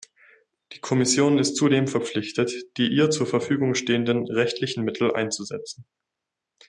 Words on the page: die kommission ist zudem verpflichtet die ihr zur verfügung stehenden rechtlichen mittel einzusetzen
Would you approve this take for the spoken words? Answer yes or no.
yes